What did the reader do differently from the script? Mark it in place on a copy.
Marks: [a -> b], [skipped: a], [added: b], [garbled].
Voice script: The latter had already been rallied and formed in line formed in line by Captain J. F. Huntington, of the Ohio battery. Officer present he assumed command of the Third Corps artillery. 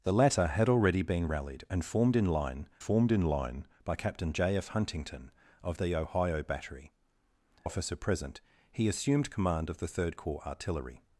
The latter had already been rallied and formed in line formed in line by Captain J. F. Huntington, of the Ohio battery. Officer present he assumed command of the Third Corps artillery.